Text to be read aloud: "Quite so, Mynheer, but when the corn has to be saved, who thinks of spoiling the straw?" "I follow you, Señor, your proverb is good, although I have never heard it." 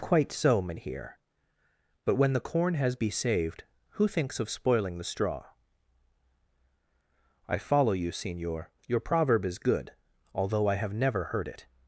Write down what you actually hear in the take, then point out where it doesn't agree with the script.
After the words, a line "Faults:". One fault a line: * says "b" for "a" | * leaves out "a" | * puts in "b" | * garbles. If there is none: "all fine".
"Quite so, Mynheer, but when the corn has be saved, who thinks of spoiling the straw?" "I follow you, Señor, your proverb is good, although I have never heard it."
Faults:
* leaves out "to"